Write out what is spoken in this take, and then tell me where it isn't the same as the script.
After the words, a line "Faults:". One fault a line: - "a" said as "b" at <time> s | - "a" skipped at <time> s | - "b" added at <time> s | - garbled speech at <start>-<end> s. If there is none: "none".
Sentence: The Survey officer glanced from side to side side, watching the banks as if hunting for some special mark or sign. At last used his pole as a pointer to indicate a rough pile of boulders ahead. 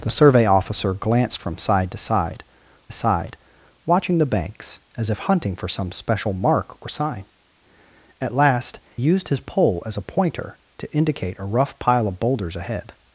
The Survey officer glanced from side to side side, watching the banks as if hunting for some special mark or sign. At last used his pole as a pointer to indicate a rough pile of boulders ahead.
Faults:
none